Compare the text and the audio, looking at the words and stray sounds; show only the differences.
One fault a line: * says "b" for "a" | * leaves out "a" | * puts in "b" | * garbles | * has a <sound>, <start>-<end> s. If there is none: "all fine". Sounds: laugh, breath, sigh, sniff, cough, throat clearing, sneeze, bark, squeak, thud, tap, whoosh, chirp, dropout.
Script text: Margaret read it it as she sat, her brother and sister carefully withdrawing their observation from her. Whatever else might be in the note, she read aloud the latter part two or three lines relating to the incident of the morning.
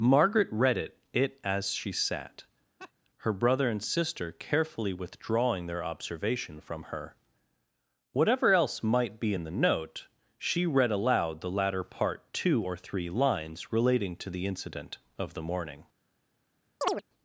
* has a laugh, 2.8-2.9 s
* has a chirp, 16.8-17.0 s